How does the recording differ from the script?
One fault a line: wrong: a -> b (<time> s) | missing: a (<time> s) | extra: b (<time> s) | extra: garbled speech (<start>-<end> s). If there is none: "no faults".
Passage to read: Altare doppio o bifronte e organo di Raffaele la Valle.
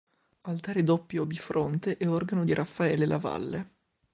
no faults